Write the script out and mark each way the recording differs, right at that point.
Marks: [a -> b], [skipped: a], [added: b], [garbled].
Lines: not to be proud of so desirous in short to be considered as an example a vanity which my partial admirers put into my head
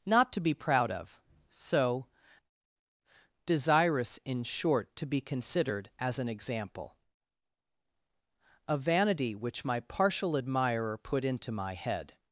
not to be proud of so desirous in short to be considered as an example a vanity which my partial [admirers -> admirer] put into my head